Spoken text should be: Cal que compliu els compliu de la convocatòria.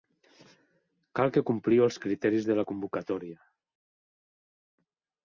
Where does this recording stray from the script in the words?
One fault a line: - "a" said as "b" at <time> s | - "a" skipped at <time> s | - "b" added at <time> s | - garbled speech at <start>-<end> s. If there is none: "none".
- "compliu" said as "criteris" at 2.0 s